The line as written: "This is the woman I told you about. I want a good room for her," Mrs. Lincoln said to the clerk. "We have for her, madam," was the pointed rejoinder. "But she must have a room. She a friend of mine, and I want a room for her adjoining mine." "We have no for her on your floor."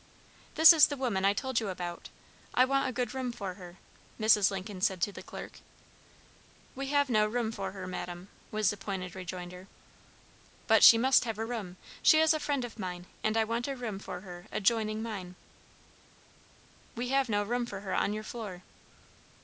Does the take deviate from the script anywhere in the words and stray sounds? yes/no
yes